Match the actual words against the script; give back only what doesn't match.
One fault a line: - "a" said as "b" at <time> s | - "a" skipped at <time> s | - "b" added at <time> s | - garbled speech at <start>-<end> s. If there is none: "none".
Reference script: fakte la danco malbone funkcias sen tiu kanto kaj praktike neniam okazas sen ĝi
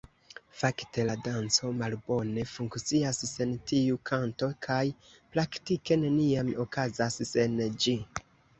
none